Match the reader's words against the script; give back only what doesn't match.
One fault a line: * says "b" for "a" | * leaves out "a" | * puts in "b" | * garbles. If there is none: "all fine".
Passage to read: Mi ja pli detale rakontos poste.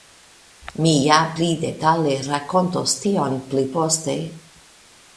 * puts in "tion pli"